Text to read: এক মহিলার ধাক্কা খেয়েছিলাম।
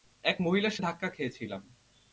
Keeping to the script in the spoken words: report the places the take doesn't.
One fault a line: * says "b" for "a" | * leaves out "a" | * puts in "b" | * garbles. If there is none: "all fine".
all fine